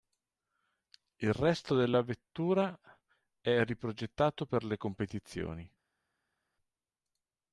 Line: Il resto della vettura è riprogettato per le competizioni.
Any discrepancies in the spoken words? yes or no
no